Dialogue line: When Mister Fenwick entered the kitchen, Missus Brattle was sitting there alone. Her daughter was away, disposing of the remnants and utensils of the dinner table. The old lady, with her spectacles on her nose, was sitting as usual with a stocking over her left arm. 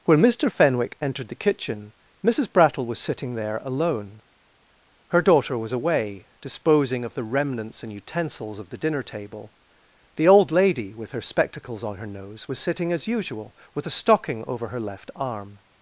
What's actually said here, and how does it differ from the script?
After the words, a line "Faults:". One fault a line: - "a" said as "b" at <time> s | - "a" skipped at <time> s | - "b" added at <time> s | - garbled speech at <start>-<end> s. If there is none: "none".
When Mister Fenwick entered the kitchen, Missus Brattle was sitting there alone. Her daughter was away, disposing of the remnants and utensils of the dinner table. The old lady, with her spectacles on her nose, was sitting as usual with a stocking over her left arm.
Faults:
none